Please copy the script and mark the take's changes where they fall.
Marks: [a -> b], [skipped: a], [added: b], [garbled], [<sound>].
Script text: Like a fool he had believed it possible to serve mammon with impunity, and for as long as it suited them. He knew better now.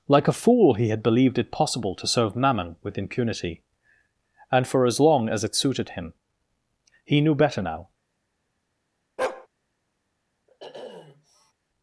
Like a fool he had believed it possible to serve mammon with impunity, and for as long as it suited [them. -> him] He knew better now. [bark] [sniff]